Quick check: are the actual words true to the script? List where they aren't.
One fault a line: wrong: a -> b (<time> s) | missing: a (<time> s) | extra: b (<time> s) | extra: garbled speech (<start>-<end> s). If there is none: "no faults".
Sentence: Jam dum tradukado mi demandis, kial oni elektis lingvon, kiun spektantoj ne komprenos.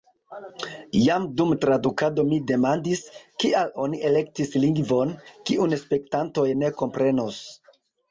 no faults